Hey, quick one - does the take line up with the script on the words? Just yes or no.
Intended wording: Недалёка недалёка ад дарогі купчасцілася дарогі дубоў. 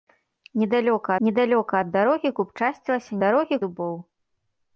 yes